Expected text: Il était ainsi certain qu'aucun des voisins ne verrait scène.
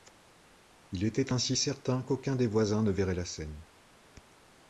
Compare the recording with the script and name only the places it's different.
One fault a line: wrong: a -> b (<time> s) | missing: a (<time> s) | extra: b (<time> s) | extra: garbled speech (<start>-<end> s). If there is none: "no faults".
extra: la (3.1 s)